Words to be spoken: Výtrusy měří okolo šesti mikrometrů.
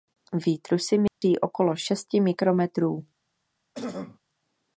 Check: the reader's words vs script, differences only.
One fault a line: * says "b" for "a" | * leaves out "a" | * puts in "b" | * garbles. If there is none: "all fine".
all fine